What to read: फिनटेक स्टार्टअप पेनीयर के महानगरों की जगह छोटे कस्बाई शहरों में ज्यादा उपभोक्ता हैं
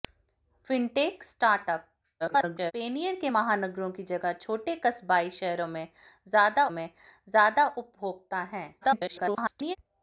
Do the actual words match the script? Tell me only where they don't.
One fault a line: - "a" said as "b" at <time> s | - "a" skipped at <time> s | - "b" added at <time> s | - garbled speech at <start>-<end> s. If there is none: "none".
- garbled speech at 2.2-2.7 s
- "में ज्यादा" added at 6.7 s
- garbled speech at 8.8-9.8 s